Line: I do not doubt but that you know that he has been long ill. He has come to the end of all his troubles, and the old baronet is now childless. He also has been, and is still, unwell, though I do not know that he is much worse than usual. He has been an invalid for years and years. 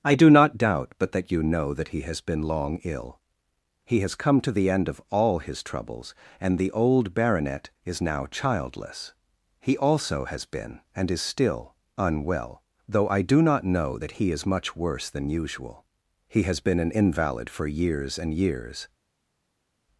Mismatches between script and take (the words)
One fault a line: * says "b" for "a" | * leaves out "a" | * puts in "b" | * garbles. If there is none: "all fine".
all fine